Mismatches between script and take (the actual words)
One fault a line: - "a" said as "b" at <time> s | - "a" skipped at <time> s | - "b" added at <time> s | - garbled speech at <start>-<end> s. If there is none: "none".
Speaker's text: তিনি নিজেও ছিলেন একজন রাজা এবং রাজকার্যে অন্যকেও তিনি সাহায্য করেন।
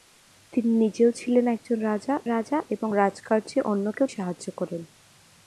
- "রাজা" added at 2.3 s
- "তিনি" skipped at 4.1 s